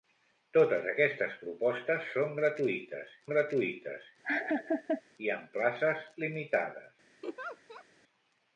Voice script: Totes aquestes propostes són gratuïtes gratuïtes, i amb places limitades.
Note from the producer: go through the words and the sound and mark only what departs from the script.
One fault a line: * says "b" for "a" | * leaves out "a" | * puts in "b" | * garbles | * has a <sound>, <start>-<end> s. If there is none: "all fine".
* has a laugh, 4.2-5.0 s
* has a laugh, 7.2-7.8 s